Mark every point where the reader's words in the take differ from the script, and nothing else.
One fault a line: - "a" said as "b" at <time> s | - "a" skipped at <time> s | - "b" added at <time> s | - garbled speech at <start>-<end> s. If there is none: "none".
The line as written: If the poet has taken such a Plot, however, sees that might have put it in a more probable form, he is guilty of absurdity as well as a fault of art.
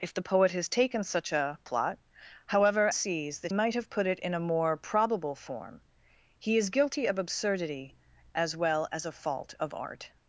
none